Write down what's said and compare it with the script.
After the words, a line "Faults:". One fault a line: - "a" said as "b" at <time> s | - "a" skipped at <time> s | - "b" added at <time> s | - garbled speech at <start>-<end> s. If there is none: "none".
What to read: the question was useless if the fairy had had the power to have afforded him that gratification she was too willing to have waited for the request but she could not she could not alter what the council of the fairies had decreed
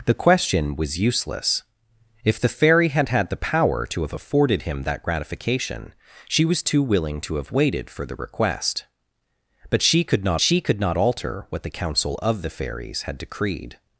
the question was useless if the fairy had had the power to have afforded him that gratification she was too willing to have waited for the request but she could not she could not alter what the council of the fairies had decreed
Faults:
none